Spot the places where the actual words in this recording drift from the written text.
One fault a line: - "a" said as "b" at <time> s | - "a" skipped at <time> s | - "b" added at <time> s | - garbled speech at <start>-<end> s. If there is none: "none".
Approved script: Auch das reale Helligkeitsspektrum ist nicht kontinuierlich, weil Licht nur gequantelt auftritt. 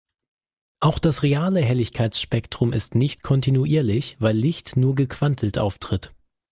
none